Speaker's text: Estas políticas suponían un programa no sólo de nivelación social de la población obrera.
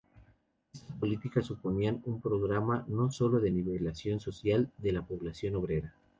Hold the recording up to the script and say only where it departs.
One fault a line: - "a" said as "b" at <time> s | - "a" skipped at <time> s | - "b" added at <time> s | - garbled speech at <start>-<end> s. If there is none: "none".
none